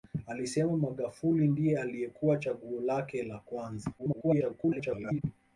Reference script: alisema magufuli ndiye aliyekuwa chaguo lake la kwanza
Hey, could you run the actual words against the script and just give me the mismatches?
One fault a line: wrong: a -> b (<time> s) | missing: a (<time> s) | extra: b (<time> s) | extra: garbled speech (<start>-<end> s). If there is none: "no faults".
extra: garbled speech (4.0-5.2 s)